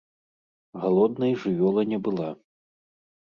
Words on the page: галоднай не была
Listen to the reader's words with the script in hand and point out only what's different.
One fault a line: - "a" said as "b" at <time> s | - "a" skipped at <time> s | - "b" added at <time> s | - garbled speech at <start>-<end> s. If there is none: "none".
- "жывёла" added at 1.4 s